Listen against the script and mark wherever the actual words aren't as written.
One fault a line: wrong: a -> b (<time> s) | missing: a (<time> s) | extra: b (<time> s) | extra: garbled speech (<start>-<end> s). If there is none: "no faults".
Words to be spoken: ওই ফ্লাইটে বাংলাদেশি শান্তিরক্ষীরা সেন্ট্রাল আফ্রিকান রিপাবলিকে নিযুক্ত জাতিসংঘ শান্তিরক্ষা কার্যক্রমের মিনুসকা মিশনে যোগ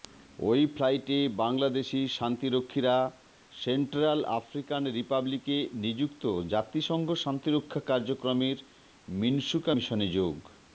no faults